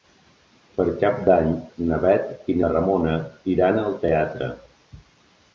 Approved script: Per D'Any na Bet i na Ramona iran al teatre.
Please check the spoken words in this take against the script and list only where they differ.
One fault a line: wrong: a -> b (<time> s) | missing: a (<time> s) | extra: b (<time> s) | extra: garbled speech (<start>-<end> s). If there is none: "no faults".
extra: Cap (1.0 s)